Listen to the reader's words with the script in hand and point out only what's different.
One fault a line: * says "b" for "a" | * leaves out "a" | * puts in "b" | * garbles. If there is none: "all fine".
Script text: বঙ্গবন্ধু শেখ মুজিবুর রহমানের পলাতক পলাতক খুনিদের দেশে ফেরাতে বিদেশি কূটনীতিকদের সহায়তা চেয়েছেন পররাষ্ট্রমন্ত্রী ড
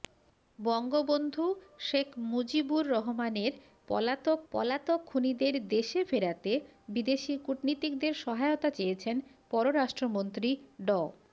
all fine